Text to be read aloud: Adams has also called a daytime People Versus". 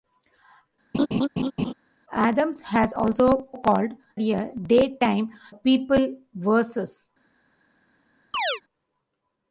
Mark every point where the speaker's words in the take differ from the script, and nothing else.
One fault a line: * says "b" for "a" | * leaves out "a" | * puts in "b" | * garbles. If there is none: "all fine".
all fine